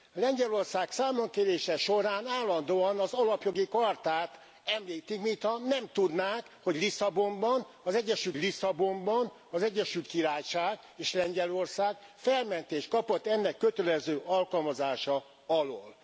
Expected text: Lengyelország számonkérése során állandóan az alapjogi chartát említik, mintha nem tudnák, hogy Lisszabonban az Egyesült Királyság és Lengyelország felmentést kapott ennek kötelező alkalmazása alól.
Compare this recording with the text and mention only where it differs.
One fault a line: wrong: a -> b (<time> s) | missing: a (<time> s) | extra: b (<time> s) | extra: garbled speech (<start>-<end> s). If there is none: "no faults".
extra: Lisszabonban az Egyesült (8.4 s)